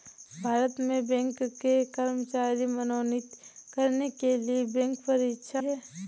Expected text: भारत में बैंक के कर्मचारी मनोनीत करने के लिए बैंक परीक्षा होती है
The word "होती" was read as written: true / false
false